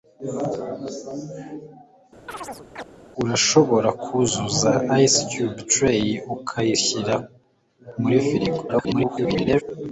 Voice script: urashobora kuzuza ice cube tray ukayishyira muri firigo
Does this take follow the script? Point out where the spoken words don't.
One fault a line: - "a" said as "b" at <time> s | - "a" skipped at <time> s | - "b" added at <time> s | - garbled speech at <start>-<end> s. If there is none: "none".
- garbled speech at 8.7-9.6 s